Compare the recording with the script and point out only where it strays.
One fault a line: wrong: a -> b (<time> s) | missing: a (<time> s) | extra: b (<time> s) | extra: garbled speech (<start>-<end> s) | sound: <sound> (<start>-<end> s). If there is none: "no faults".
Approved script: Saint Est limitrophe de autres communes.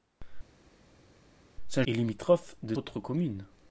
no faults